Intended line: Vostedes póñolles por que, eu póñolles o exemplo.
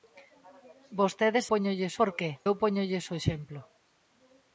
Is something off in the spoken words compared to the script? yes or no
no